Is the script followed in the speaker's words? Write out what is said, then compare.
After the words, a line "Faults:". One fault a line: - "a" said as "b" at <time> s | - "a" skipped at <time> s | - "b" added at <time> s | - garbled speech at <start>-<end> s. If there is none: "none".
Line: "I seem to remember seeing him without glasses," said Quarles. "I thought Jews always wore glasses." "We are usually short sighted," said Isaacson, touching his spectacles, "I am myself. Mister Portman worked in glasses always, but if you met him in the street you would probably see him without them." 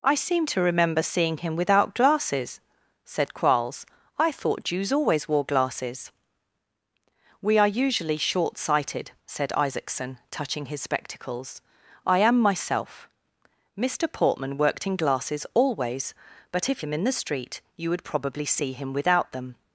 "I seem to remember seeing him without glasses," said Quarles. "I thought Jews always wore glasses." "We are usually short sighted," said Isaacson, touching his spectacles, "I am myself. Mister Portman worked in glasses always, but if him in the street you would probably see him without them."
Faults:
- "you met" skipped at 16.8 s